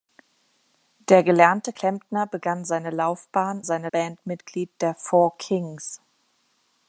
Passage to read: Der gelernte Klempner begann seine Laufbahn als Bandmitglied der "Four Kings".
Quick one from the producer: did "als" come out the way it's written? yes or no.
no